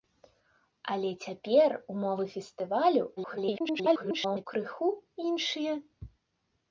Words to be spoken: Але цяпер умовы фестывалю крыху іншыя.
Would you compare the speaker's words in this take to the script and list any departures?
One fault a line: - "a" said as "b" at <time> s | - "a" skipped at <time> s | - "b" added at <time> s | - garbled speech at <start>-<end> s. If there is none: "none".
- garbled speech at 3.2-4.5 s